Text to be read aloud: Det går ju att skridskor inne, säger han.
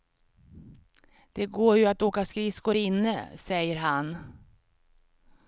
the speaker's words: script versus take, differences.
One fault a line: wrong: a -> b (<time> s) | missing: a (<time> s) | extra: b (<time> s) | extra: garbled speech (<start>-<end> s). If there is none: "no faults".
extra: åka (2.0 s)